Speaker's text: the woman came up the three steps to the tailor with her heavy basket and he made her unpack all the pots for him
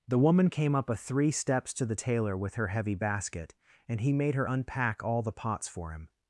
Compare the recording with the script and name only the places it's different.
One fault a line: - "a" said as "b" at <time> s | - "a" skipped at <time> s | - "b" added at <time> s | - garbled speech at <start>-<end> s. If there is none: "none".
- "the" said as "a" at 0.9 s